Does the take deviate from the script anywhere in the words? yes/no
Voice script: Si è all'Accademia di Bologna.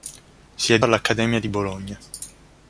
no